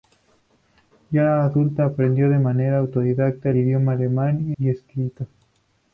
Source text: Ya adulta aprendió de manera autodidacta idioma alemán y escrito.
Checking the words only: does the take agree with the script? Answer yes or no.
yes